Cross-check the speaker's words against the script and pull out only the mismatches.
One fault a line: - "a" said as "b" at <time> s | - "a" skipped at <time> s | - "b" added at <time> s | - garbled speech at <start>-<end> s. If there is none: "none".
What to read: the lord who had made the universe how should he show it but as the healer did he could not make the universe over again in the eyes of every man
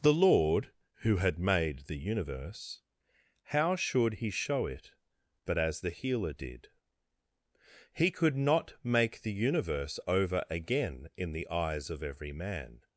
none